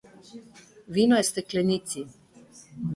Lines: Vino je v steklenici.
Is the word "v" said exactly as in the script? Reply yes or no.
yes